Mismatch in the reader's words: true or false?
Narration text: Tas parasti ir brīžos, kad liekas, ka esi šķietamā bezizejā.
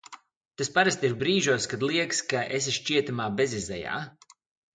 false